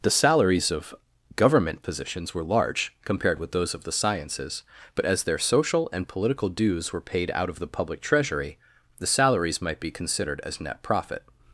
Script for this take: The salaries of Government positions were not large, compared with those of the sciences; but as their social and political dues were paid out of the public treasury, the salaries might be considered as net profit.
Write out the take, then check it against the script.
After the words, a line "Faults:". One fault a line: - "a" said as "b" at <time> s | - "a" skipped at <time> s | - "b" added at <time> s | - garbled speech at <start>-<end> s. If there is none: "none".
The salaries of Government positions were large, compared with those of the sciences; but as their social and political dues were paid out of the public treasury, the salaries might be considered as net profit.
Faults:
- "not" skipped at 2.4 s